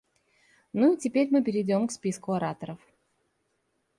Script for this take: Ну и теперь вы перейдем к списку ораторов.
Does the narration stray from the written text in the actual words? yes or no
yes